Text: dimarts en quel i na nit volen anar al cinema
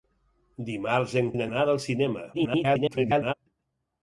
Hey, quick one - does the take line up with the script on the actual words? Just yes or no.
no